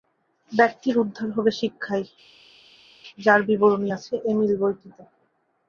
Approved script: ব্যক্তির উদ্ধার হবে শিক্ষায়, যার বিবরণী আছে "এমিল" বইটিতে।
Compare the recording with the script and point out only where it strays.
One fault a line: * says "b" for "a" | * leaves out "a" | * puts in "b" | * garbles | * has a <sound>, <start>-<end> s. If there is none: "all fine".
all fine